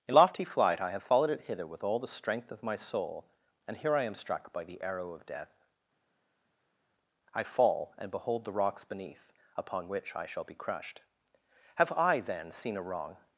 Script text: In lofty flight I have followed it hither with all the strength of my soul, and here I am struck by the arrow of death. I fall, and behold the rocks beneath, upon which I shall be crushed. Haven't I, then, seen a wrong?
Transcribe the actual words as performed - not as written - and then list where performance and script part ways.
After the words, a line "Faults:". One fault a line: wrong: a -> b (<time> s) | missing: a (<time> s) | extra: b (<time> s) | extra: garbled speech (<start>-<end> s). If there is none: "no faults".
In lofty flight I have followed it hither with all the strength of my soul, and here I am struck by the arrow of death. I fall, and behold the rocks beneath, upon which I shall be crushed. Have I, then, seen a wrong?
Faults:
wrong: Haven't -> Have (11.8 s)